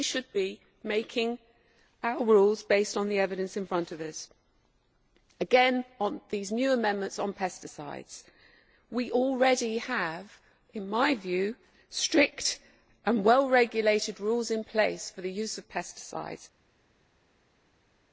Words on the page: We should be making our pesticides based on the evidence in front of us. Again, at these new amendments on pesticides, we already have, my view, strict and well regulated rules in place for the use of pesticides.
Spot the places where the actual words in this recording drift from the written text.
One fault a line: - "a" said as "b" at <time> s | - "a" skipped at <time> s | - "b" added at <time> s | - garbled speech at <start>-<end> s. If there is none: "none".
- "pesticides" said as "rules" at 2.2 s
- "at" said as "on" at 6.0 s
- "in" added at 10.7 s